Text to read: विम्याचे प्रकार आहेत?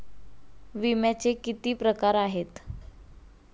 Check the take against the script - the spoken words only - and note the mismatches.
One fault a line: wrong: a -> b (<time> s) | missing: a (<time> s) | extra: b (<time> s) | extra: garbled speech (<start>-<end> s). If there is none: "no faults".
extra: किती (1.3 s)